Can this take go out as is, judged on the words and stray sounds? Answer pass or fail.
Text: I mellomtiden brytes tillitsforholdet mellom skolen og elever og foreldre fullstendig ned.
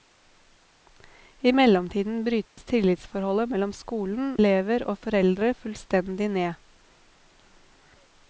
fail